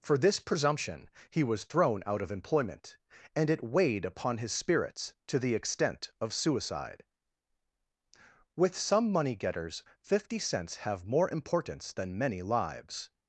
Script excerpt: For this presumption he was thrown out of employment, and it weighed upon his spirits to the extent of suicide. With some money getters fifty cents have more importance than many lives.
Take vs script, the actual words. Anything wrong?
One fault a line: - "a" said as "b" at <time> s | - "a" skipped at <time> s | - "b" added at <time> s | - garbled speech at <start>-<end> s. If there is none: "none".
none